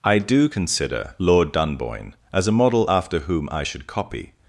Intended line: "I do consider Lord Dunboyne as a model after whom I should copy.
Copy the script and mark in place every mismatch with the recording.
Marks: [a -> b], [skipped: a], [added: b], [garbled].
"I do consider Lord Dunboyne as a model after whom I should copy.